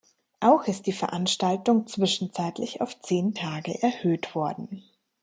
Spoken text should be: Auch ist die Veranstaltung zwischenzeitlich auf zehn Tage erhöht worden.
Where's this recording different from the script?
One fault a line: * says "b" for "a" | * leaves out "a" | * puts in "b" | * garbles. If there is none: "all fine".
all fine